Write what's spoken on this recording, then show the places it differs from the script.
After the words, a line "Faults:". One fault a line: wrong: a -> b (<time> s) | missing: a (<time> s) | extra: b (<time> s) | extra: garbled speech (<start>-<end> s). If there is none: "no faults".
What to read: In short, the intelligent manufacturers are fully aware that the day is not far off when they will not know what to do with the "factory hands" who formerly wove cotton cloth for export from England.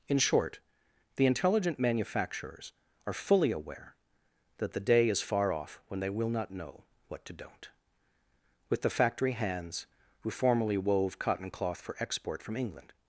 In short, the intelligent manufacturers are fully aware that the day is far off when they will not know what to don't with the "factory hands" who formerly wove cotton cloth for export from England.
Faults:
missing: not (5.2 s)
wrong: do -> don't (7.3 s)